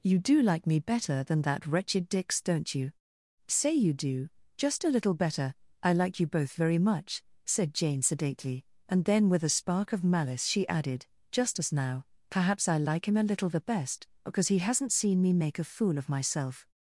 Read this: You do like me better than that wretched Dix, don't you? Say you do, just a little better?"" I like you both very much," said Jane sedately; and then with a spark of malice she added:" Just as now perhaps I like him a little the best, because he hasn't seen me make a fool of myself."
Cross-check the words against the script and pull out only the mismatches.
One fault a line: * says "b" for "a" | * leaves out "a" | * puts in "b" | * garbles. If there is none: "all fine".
all fine